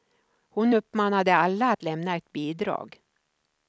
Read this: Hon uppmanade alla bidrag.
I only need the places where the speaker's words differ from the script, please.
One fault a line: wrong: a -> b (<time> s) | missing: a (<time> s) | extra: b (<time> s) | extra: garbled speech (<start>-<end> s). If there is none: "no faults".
extra: att lämna ett (1.7 s)